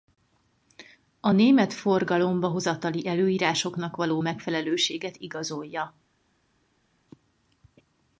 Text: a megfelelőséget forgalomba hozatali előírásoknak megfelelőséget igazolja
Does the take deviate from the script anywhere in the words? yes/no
yes